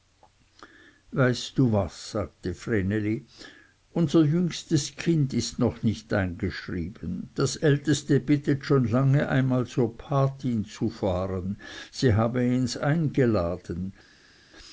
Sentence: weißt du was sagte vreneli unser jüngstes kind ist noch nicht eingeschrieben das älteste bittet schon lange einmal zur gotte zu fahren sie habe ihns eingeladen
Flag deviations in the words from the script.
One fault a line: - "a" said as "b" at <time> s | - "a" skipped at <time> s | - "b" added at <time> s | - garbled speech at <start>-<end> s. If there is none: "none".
none